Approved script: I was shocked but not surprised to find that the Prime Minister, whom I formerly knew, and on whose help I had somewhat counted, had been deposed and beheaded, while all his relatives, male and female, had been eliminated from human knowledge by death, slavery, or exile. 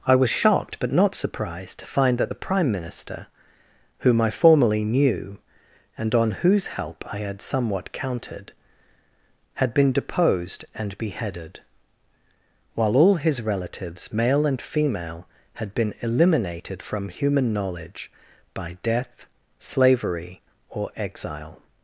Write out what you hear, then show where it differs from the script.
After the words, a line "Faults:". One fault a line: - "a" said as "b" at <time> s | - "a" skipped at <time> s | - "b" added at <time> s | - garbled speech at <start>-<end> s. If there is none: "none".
I was shocked but not surprised to find that the Prime Minister, whom I formerly knew, and on whose help I had somewhat counted, had been deposed and beheaded, while all his relatives, male and female, had been eliminated from human knowledge by death, slavery, or exile.
Faults:
none